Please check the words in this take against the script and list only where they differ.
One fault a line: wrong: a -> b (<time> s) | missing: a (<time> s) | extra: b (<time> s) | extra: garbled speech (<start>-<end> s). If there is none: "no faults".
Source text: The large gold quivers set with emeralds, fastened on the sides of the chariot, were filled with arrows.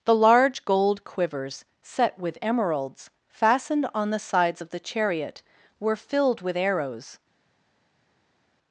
no faults